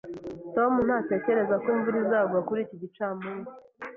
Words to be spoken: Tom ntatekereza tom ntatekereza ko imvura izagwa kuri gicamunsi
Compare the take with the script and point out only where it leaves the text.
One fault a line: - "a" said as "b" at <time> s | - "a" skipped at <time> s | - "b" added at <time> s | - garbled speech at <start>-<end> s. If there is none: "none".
- "tom ntatekereza" skipped at 1.6 s
- "iki" added at 2.6 s